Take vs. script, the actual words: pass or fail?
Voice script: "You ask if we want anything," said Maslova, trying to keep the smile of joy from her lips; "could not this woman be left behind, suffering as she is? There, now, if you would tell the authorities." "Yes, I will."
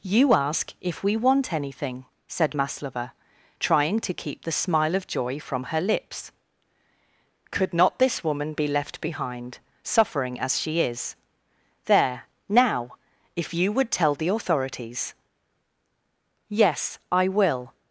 pass